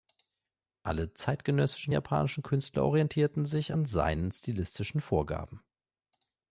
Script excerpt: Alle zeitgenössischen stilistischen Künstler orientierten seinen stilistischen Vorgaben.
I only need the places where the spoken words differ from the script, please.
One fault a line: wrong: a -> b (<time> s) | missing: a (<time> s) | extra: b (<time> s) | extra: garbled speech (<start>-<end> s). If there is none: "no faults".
wrong: stilistischen -> japanischen (1.9 s)
extra: sich an (3.5 s)